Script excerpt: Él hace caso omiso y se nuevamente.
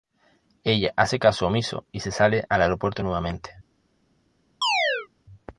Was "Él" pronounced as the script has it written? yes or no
no